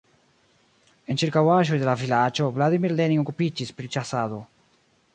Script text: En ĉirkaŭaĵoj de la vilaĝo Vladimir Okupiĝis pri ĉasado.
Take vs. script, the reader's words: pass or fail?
fail